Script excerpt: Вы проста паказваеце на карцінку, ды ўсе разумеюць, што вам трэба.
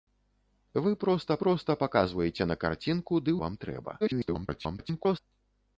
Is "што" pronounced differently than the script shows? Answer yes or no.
yes